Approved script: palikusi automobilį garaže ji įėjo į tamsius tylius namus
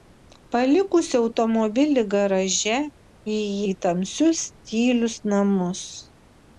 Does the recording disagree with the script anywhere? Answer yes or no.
yes